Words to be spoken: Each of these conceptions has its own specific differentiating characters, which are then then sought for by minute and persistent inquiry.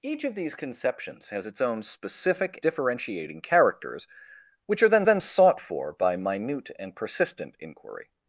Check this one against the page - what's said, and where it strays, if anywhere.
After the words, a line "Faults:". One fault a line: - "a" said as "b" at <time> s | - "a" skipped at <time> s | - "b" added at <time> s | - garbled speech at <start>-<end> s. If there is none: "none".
Each of these conceptions has its own specific differentiating characters, which are then then sought for by minute and persistent inquiry.
Faults:
none